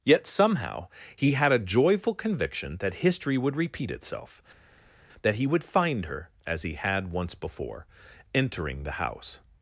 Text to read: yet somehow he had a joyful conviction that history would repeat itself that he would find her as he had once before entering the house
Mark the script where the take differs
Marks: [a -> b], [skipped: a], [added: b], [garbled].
yet somehow he had a joyful conviction that history would repeat itself that he would find her as he had once before entering the house